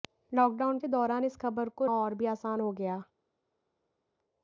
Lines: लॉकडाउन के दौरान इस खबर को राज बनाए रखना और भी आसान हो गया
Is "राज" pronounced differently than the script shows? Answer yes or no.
yes